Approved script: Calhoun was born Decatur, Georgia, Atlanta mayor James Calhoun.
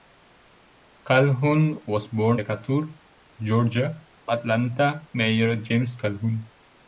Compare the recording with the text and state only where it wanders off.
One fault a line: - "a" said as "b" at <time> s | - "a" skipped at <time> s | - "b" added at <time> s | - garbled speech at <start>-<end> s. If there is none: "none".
none